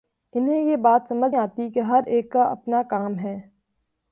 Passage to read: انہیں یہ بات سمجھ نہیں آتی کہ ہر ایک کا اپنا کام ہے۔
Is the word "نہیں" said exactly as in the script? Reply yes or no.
no